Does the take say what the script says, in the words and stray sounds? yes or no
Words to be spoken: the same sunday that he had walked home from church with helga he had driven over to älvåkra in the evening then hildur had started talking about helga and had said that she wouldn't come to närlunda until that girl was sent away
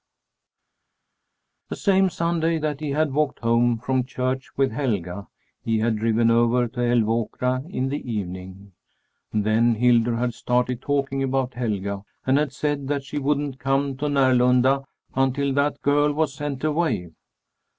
yes